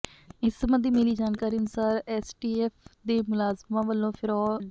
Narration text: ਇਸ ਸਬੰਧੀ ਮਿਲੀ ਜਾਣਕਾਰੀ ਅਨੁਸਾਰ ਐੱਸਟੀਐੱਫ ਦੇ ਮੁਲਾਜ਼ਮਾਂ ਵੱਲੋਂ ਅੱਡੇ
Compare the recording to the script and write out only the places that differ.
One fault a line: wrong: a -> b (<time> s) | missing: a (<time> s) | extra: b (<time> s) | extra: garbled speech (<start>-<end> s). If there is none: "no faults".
no faults